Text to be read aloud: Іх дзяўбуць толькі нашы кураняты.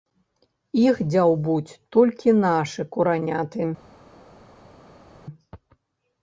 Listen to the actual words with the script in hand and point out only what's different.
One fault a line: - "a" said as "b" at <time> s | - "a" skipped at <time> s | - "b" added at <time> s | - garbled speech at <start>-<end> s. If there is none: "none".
none